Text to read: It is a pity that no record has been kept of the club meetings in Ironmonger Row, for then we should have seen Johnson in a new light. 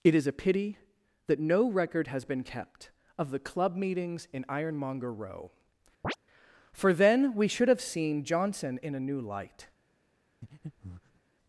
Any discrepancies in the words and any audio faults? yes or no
yes